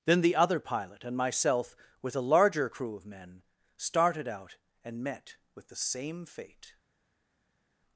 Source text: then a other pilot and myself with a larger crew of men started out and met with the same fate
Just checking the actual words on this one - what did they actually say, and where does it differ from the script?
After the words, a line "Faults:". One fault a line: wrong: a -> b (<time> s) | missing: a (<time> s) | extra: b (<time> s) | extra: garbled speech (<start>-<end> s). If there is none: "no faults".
then the other pilot and myself with a larger crew of men started out and met with the same fate
Faults:
wrong: a -> the (0.2 s)